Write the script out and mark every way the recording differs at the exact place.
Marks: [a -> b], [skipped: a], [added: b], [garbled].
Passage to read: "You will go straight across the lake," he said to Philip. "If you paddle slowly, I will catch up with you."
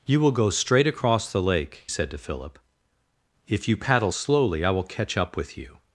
"You will go straight across the lake," [skipped: he] said to Philip. "If you paddle slowly, I will catch up with you."